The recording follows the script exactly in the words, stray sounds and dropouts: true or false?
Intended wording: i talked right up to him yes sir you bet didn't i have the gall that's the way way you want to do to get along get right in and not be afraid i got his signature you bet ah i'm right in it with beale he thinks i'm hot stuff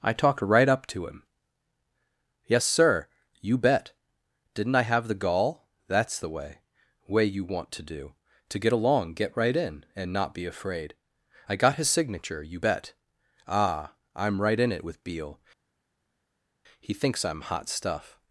true